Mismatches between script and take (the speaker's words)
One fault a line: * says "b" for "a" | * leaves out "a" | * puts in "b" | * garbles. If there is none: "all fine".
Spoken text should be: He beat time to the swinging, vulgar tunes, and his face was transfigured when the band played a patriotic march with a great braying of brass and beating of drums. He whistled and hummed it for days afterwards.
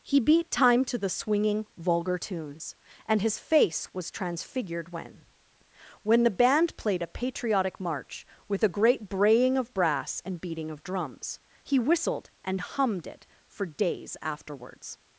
* puts in "when"